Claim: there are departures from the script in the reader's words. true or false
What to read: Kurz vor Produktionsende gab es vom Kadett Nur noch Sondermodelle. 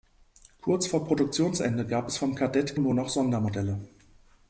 false